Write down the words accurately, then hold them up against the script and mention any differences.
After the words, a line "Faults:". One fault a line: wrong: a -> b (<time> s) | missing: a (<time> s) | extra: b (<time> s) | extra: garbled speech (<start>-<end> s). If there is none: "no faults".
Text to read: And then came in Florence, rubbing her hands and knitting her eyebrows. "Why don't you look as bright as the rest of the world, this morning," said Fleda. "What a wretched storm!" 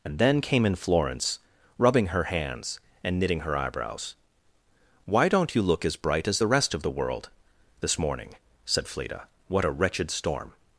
And then came in Florence, rubbing her hands and knitting her eyebrows. "Why don't you look as bright as the rest of the world, this morning," said Fleda. "What a wretched storm!"
Faults:
no faults